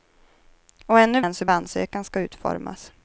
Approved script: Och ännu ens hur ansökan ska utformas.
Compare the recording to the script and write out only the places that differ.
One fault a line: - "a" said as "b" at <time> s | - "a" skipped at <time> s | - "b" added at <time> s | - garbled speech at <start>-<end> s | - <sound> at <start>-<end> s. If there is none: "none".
none